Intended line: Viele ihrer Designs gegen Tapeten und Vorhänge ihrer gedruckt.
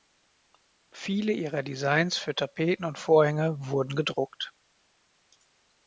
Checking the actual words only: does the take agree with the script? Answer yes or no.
no